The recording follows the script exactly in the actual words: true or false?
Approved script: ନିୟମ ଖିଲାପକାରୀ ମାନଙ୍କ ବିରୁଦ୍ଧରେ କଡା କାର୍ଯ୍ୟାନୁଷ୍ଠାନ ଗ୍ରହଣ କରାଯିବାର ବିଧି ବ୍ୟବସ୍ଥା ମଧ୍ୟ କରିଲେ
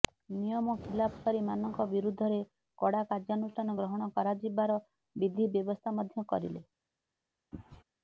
true